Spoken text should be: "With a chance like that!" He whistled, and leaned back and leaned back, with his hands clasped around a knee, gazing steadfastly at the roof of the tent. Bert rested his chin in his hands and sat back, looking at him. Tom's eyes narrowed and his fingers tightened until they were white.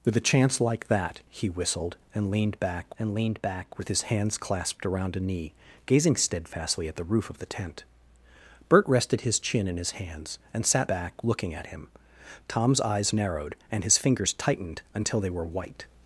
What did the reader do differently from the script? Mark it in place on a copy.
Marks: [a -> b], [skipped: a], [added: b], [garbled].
"With a chance like that!" He whistled, and leaned back and leaned back, with his hands clasped around a knee, gazing steadfastly at the roof of the tent. Bert rested his chin in his hands and sat back, looking at him. Tom's eyes narrowed and his fingers tightened until they were white.